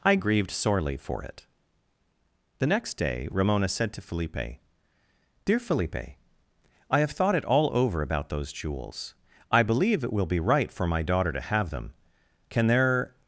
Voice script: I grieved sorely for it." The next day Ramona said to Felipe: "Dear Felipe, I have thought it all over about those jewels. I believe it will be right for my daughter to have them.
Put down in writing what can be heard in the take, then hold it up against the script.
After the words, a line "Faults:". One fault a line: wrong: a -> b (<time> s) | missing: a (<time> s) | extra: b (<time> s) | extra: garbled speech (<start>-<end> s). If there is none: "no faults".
I grieved sorely for it." The next day Ramona said to Felipe: "Dear Felipe, I have thought it all over about those jewels. I believe it will be right for my daughter to have them. Can there
Faults:
extra: Can there (12.5 s)